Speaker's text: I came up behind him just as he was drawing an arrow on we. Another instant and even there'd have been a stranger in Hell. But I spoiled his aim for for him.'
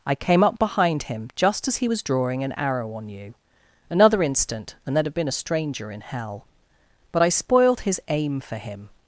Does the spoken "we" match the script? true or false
false